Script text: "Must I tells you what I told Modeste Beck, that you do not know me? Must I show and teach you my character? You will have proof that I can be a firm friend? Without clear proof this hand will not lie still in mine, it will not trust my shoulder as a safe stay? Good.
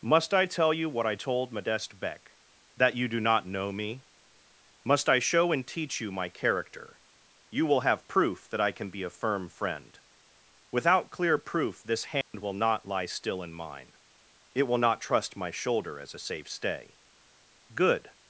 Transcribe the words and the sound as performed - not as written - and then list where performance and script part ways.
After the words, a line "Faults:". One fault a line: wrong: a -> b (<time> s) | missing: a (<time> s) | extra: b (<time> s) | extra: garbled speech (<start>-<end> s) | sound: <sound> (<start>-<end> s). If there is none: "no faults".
"Must I tell you what I told Modeste Beck, that you do not know me? Must I show and teach you my character? You will have proof that I can be a firm friend? Without clear proof this hand will not lie still in mine, it will not trust my shoulder as a safe stay? Good.
Faults:
wrong: tells -> tell (0.5 s)
sound: dropout (12.2-12.3 s)